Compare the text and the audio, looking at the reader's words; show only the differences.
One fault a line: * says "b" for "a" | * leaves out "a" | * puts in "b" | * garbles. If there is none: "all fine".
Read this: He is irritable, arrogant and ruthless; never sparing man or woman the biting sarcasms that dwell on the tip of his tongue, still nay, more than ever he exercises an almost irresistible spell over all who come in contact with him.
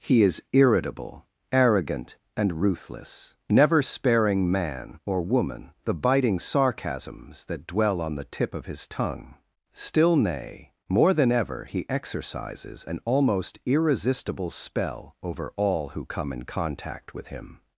all fine